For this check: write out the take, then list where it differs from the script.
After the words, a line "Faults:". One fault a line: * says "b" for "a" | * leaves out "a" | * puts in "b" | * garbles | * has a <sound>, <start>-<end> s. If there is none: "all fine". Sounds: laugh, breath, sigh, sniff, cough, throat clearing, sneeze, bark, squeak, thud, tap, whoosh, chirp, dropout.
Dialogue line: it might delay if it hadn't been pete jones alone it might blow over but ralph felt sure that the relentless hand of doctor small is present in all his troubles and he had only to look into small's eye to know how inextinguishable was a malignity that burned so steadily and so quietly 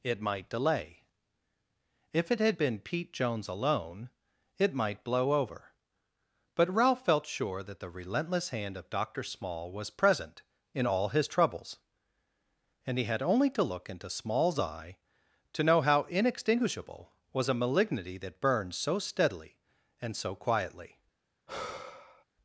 it might delay if it had been pete jones alone it might blow over but ralph felt sure that the relentless hand of doctor small was present in all his troubles and he had only to look into small's eye to know how inextinguishable was a malignity that burned so steadily and so quietly
Faults:
* says "had" for "hadn't"
* says "was" for "is"
* has a sigh, 21.5-22.2 s